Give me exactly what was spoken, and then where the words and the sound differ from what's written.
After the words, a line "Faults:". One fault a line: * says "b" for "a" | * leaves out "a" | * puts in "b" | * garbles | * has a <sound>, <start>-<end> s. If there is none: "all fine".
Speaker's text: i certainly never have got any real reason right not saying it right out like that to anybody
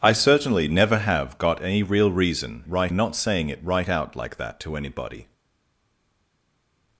i certainly never have got any real reason right not saying it right out like that to anybody
Faults:
all fine